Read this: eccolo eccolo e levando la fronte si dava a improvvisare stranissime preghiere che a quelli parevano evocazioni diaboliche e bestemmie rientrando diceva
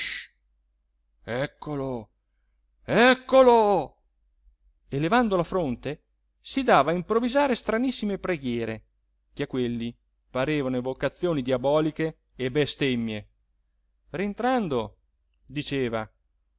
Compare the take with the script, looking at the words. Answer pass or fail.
pass